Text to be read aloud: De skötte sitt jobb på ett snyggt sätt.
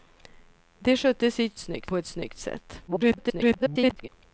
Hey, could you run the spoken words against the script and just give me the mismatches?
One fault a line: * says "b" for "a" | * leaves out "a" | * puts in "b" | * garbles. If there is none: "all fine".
* says "snyggt" for "jobb"
* garbles